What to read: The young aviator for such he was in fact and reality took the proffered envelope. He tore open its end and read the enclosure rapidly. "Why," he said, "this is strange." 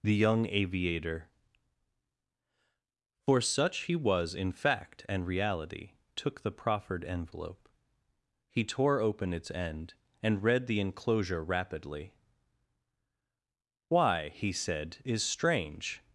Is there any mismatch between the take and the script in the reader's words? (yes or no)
yes